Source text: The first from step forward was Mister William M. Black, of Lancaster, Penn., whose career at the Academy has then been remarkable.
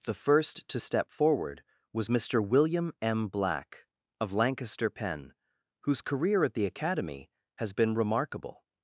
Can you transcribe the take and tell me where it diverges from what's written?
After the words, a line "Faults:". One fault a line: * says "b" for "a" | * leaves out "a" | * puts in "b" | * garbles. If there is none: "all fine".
The first to step forward was Mister William M. Black, of Lancaster, Penn., whose career at the Academy has been remarkable.
Faults:
* says "to" for "from"
* leaves out "then"